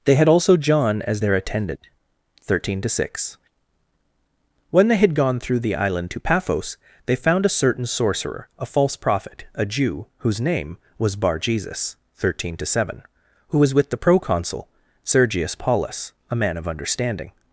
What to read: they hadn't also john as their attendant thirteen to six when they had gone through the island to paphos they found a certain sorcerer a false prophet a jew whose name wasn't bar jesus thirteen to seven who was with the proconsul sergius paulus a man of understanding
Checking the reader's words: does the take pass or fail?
fail